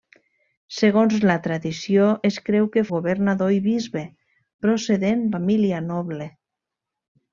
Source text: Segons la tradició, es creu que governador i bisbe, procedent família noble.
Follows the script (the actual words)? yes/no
yes